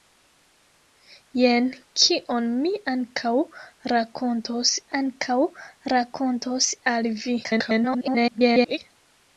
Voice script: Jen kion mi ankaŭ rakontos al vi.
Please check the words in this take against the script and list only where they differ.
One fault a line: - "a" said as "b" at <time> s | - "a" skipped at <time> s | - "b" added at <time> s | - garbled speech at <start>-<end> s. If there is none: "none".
- "ankaŭ rakontos" added at 5.0 s
- garbled speech at 7.4-8.8 s